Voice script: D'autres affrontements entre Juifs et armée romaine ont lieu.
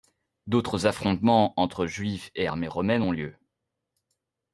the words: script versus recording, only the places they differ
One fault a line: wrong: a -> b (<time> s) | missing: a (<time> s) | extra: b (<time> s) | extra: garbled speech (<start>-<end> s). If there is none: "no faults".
no faults